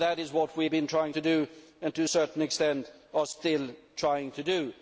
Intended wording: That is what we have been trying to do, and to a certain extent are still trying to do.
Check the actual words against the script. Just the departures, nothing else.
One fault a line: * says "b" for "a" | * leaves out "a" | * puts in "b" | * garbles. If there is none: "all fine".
all fine